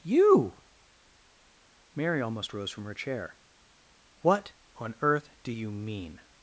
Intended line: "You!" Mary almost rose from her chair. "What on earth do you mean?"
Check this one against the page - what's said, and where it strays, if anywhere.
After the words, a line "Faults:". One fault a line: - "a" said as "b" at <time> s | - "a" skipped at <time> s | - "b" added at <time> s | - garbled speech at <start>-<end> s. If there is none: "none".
"You!" Mary almost rose from her chair. "What on earth do you mean?"
Faults:
none